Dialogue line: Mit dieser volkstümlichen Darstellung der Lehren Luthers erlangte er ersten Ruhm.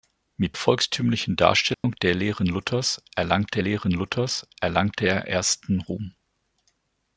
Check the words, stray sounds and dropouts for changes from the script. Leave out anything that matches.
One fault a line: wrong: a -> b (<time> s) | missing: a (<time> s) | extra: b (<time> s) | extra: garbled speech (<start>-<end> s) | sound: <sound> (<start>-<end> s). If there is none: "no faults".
missing: dieser (0.6 s)
sound: dropout (1.7-1.8 s)
extra: Lehren Luthers erlangte (3.6 s)